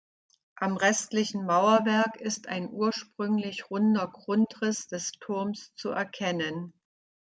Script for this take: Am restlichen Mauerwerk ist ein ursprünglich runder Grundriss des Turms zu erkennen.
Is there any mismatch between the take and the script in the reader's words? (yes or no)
no